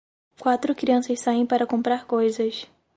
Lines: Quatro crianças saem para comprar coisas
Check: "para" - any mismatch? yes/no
no